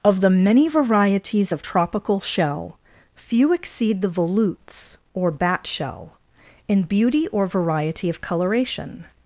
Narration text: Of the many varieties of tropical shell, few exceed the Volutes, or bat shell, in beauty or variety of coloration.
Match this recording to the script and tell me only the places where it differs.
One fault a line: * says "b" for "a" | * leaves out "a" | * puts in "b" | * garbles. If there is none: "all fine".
all fine